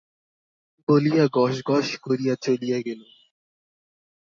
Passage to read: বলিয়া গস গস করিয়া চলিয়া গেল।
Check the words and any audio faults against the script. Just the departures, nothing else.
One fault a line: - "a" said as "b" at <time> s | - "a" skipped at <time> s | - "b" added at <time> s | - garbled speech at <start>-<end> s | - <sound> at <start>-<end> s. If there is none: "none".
none